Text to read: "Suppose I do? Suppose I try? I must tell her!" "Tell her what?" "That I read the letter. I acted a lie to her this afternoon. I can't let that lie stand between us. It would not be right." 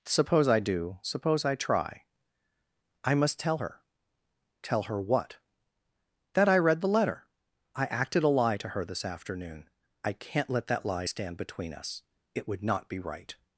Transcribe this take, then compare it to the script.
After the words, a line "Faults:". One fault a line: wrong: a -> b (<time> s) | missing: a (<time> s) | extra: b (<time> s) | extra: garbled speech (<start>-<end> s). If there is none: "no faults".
"Suppose I do? Suppose I try? I must tell her!" "Tell her what?" "That I read the letter. I acted a lie to her this afternoon. I can't let that lie stand between us. It would not be right."
Faults:
no faults